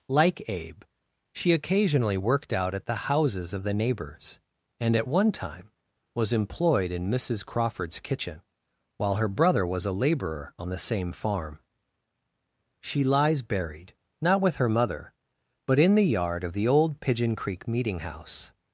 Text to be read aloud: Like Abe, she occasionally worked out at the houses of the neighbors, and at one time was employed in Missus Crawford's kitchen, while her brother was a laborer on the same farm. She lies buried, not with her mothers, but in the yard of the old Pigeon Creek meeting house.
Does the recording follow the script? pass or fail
fail